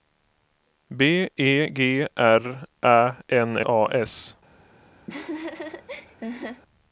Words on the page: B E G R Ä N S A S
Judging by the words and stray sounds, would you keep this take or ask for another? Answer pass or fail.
fail